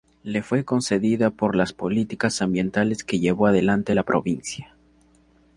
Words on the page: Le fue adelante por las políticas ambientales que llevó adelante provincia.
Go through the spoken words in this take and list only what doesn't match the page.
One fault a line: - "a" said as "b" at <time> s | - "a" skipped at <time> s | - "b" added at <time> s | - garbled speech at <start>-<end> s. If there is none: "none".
- "adelante" said as "concedida" at 0.7 s
- "la" added at 3.9 s